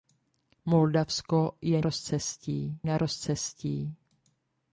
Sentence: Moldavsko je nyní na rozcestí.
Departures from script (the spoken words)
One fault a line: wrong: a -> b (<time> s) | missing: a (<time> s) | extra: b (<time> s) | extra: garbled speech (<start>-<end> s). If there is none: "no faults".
wrong: nyní -> rozcestí (1.8 s)